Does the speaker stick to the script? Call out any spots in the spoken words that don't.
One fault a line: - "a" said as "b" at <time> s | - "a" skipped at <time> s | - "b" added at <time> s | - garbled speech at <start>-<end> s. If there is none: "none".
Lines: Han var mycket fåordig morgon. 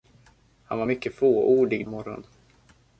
none